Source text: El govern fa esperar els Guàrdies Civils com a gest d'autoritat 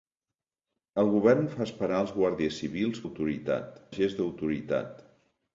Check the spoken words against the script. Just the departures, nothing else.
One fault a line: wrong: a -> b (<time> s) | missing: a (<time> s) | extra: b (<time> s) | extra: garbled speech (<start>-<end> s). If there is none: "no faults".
wrong: com -> d'autoritat (3.0 s)